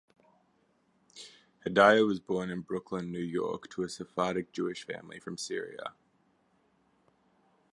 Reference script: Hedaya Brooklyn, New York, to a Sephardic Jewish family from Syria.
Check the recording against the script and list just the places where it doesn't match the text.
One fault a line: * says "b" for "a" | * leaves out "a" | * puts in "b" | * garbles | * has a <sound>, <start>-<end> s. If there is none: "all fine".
* puts in "was born in"